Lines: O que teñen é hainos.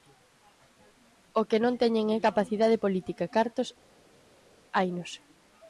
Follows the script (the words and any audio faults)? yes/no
no